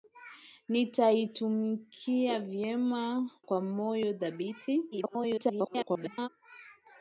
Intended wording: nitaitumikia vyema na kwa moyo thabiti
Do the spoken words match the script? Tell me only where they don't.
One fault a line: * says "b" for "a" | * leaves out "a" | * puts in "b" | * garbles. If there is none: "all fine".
* leaves out "na"
* garbles